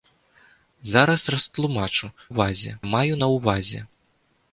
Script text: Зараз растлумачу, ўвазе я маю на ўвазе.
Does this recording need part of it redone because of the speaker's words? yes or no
no